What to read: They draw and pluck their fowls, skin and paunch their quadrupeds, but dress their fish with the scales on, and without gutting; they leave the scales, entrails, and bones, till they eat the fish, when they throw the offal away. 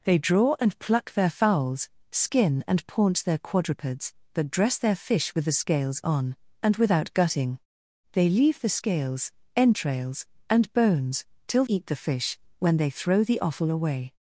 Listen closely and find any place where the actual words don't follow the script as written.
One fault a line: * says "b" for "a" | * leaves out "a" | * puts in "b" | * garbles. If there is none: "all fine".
* leaves out "they"